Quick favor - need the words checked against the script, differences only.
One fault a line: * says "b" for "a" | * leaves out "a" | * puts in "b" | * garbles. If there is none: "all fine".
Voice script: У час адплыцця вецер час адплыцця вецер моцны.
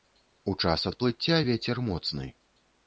* leaves out "час адплыцця вецер"